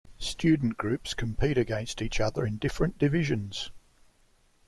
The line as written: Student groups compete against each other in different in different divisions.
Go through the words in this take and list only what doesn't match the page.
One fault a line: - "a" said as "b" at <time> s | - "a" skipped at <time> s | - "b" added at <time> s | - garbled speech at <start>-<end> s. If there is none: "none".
- "in different" skipped at 3.0 s